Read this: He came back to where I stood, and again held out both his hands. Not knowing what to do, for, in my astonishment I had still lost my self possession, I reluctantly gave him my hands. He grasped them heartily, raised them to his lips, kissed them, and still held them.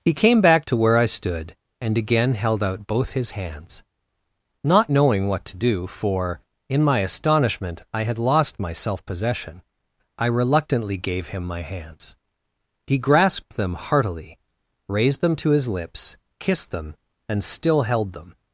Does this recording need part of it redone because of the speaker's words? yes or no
yes